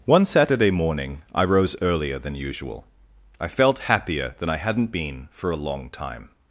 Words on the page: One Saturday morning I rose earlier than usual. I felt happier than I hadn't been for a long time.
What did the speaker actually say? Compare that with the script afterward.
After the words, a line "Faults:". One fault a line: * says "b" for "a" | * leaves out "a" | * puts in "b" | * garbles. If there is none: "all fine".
One Saturday morning I rose earlier than usual. I felt happier than I hadn't been for a long time.
Faults:
all fine